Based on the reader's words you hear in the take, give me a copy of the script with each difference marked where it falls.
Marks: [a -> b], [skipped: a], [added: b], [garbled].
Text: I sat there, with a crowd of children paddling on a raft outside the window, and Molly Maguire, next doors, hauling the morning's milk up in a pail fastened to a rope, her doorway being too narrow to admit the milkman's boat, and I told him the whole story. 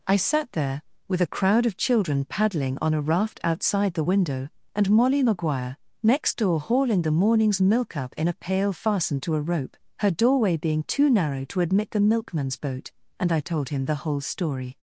I sat there, with a crowd of children paddling on a raft outside the window, and Molly Maguire, next [doors, -> door] hauling the morning's milk up in a pail fastened to a rope, her doorway being too narrow to admit the milkman's boat, and I told him the whole story.